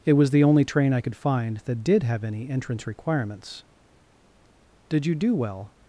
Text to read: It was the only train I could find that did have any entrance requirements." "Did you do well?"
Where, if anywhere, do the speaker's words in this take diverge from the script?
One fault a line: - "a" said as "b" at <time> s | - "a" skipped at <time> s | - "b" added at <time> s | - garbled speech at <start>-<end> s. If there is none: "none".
none